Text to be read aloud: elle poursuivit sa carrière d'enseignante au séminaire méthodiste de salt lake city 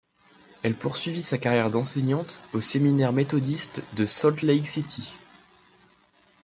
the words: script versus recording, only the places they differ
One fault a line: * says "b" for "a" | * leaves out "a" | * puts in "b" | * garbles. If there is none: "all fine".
all fine